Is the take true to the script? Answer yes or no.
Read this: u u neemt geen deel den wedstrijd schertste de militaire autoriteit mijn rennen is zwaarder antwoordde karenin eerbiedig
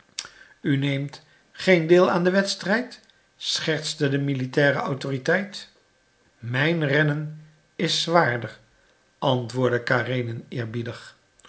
no